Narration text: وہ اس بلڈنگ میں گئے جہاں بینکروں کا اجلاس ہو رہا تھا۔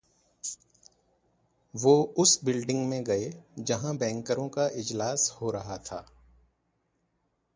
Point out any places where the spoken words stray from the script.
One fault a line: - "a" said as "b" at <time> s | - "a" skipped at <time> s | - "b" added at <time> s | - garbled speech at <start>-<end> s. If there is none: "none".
none